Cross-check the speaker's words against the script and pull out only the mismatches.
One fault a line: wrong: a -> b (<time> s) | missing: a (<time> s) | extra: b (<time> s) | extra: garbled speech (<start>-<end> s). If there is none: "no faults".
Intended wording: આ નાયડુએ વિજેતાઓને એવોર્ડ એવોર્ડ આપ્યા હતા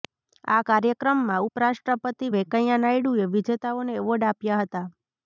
extra: કાર્યક્રમમાં ઉપરાષ્ટ્રપતિ વેંકૈયા (0.7 s)
missing: એવોર્ડ (4.3 s)